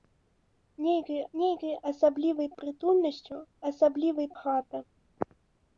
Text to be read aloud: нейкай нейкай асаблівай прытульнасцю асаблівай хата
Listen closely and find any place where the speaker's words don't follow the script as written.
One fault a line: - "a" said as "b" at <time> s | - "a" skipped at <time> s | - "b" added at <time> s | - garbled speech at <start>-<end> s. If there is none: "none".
none